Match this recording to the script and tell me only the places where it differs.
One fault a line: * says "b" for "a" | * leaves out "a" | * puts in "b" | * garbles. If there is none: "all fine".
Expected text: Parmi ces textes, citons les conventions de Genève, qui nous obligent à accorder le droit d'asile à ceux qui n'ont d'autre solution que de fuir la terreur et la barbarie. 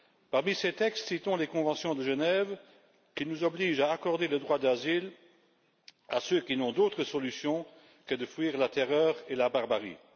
all fine